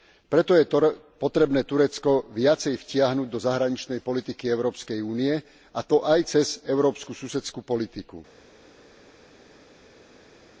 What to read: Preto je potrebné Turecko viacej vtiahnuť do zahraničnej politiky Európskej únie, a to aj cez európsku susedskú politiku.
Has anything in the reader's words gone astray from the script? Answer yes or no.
no